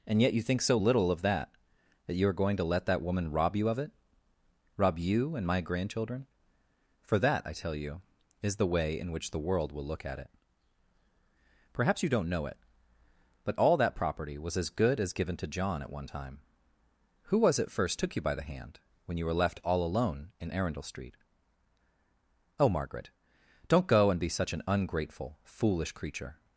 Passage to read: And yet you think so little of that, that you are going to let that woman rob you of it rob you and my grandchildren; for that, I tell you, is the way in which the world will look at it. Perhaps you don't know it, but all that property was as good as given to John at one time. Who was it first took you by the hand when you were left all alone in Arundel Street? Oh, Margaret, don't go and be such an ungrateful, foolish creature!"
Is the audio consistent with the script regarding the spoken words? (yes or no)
yes